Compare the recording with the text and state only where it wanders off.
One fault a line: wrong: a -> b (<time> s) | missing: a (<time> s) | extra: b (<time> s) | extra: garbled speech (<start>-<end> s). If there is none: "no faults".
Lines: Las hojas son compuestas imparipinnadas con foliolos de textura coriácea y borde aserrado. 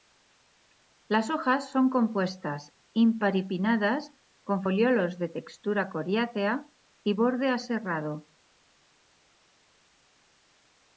no faults